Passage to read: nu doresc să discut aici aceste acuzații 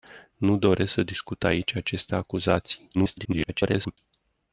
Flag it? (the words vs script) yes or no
yes